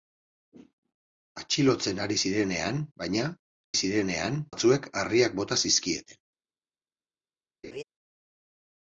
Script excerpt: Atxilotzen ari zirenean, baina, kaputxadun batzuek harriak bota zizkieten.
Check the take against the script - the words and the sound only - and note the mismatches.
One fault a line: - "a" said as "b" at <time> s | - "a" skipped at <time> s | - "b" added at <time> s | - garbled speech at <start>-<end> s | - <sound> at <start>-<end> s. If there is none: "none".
- "kaputxadun" said as "zirenean" at 3.8 s
- laugh at 7.6-7.8 s